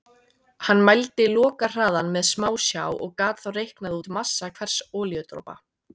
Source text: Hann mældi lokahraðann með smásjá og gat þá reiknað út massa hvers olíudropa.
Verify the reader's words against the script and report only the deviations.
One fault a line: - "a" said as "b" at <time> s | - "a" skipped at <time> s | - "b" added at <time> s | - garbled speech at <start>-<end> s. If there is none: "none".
none